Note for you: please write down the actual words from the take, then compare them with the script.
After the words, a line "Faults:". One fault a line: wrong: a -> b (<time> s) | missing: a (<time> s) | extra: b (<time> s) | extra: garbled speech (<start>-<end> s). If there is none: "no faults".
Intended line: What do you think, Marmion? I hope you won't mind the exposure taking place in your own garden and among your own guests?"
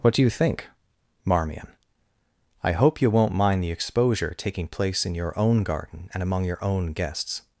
What do you think, Marmion? I hope you won't mind the exposure taking place in your own garden and among your own guests?"
Faults:
no faults